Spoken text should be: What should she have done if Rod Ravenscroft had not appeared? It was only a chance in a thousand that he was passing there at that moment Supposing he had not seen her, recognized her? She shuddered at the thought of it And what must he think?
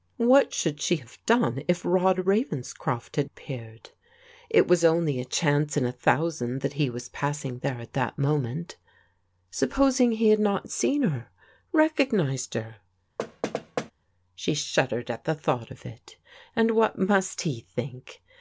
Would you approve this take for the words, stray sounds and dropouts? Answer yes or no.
no